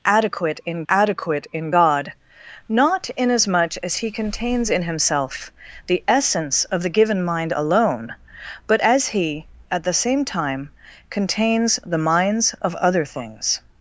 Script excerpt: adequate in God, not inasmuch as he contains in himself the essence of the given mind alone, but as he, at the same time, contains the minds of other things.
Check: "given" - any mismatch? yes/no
no